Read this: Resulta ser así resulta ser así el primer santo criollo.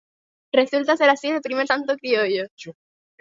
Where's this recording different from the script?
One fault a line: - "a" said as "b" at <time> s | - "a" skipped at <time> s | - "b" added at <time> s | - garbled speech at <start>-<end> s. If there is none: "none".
- "resulta ser así" skipped at 1.3 s